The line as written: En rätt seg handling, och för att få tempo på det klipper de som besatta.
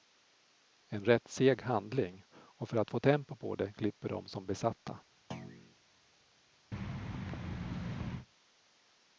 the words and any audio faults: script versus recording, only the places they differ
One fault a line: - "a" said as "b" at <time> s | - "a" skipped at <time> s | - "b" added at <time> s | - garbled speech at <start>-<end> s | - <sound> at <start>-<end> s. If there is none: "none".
- thud at 5.3-5.8 s
- thud at 6.7-8.3 s